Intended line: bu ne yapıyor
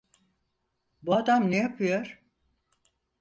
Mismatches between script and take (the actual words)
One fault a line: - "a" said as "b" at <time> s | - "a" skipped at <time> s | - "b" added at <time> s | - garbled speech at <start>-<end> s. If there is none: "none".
- "adam" added at 1.1 s